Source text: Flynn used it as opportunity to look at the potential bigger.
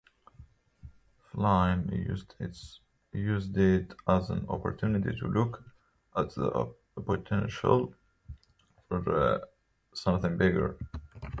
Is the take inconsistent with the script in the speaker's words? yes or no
yes